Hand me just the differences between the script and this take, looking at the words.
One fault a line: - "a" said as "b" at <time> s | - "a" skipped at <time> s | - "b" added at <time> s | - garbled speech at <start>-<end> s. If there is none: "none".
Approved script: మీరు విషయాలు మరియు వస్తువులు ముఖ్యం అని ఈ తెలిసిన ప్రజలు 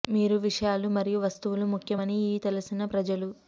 none